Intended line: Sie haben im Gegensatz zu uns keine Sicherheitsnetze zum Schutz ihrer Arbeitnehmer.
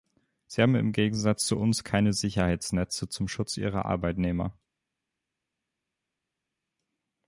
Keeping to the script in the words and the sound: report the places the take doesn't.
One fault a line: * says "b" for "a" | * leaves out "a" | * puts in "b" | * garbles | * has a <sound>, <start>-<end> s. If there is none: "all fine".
all fine